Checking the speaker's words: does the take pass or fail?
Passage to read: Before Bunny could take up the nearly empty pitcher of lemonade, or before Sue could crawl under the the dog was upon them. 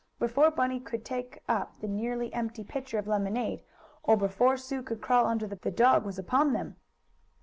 pass